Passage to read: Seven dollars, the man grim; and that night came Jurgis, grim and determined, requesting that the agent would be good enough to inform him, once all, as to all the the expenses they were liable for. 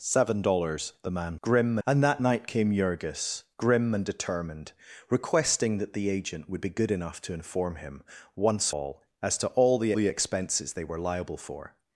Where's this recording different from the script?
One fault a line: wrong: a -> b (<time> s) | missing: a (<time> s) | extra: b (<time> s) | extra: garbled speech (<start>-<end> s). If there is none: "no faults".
no faults